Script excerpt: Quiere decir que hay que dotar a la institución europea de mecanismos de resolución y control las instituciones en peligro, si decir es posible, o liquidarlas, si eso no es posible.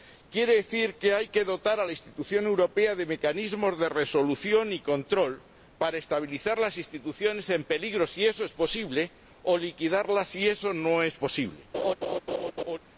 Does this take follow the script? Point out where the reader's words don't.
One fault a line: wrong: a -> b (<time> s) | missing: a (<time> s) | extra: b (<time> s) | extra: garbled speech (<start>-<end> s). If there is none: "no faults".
extra: para estabilizar (5.8 s)
wrong: decir -> eso (8.3 s)